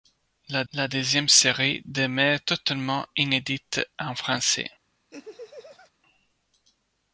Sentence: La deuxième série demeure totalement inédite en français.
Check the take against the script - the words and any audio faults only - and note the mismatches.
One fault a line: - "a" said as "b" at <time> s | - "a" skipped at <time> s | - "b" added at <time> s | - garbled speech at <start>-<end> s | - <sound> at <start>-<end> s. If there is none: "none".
- "la" added at 0.7 s
- laugh at 5.1-5.9 s